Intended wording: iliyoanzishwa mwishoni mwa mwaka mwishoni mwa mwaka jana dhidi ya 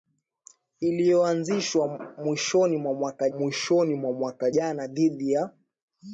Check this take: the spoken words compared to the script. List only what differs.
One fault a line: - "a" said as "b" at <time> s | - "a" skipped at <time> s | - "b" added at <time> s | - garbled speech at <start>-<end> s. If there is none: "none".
none